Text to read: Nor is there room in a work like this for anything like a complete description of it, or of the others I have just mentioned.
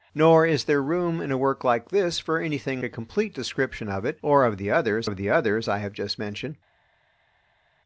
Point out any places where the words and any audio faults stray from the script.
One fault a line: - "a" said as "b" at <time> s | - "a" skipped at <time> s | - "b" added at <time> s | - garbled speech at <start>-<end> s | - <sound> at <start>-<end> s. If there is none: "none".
- "like" skipped at 2.8 s
- "of the others" added at 5.0 s